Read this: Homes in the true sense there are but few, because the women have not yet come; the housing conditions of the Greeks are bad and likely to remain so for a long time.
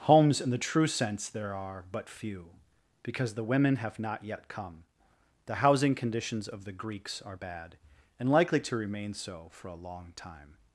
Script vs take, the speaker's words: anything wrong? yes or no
no